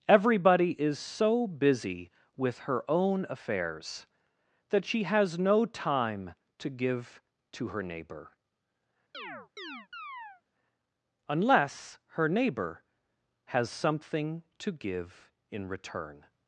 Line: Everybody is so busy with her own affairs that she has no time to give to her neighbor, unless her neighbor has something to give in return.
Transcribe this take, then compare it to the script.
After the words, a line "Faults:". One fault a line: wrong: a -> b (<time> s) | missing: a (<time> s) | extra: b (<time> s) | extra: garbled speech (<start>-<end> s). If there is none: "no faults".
Everybody is so busy with her own affairs that she has no time to give to her neighbor, unless her neighbor has something to give in return.
Faults:
no faults